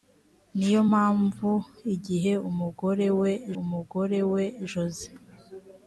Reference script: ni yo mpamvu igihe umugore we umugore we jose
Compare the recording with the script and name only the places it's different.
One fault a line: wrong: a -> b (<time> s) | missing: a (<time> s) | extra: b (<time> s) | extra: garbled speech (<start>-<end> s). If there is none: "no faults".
no faults